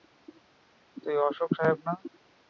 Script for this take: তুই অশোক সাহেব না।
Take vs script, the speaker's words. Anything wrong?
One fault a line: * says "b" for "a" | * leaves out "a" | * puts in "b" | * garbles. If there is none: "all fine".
all fine